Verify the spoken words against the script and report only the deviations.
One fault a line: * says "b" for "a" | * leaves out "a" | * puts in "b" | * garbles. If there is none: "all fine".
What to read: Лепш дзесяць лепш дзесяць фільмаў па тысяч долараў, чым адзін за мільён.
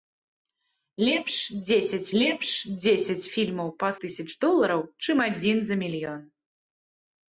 all fine